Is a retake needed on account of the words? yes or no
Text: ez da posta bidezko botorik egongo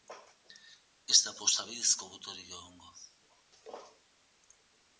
no